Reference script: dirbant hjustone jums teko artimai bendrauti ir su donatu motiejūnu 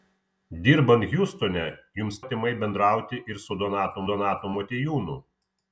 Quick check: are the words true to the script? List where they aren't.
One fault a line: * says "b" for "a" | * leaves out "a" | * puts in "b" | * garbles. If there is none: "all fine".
* leaves out "teko"
* puts in "donatu"